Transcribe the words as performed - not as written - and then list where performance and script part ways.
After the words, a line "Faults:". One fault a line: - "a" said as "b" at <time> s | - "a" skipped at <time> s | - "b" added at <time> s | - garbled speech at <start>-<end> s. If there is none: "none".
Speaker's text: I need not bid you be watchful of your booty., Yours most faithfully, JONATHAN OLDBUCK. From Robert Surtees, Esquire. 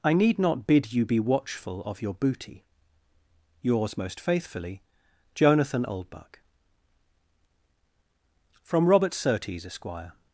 I need not bid you be watchful of your booty., Yours most faithfully, JONATHAN OLDBUCK. From Robert Surtees, Esquire.
Faults:
none